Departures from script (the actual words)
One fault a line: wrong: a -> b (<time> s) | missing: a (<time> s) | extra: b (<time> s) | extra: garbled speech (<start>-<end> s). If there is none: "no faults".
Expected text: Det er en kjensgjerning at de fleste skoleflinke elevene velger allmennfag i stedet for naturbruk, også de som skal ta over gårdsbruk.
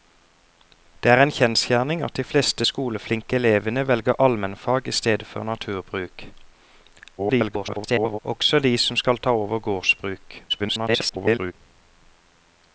extra: garbled speech (7.2-8.2 s)
extra: garbled speech (10.5-11.5 s)